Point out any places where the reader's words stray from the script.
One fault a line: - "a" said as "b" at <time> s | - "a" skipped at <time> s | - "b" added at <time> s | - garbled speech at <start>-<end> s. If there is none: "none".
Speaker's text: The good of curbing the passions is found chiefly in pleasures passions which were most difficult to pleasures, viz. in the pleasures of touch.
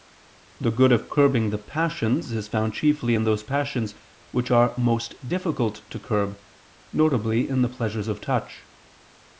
- "pleasures" said as "those" at 3.3 s
- "were" said as "are" at 4.5 s
- "pleasures" said as "curb" at 6.0 s